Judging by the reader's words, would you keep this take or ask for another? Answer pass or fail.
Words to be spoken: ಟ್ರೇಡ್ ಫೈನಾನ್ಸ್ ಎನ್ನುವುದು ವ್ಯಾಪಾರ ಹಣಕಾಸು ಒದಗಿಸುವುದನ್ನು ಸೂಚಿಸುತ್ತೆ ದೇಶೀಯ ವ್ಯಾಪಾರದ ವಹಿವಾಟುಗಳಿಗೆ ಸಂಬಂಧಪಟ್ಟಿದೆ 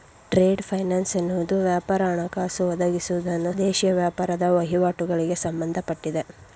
fail